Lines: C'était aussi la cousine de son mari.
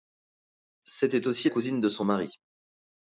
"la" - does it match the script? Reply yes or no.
no